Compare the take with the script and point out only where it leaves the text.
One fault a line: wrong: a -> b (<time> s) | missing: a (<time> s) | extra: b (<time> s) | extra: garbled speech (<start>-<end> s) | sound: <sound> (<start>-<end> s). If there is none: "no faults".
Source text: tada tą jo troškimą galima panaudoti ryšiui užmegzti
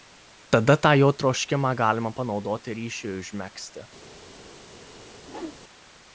sound: whoosh (5.2-5.6 s)